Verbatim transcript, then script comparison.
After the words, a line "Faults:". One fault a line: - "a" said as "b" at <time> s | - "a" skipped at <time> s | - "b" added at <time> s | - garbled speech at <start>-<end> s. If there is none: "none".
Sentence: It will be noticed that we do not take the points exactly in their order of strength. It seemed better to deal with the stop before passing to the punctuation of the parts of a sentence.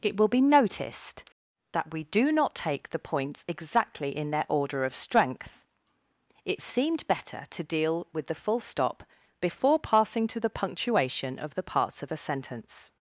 It will be noticed that we do not take the points exactly in their order of strength. It seemed better to deal with the full stop before passing to the punctuation of the parts of a sentence.
Faults:
- "full" added at 8.4 s